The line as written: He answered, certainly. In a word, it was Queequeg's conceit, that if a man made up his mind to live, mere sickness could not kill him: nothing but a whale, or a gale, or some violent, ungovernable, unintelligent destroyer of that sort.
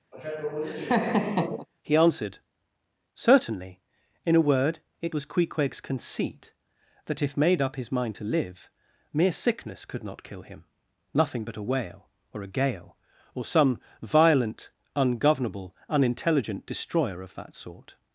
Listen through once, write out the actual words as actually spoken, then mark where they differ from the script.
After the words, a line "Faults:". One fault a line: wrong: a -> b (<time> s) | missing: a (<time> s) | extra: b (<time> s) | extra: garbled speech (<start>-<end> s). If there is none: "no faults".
He answered, certainly. In a word, it was Queequeg's conceit, that if made up his mind to live, mere sickness could not kill him: nothing but a whale, or a gale, or some violent, ungovernable, unintelligent destroyer of that sort.
Faults:
missing: a man (7.4 s)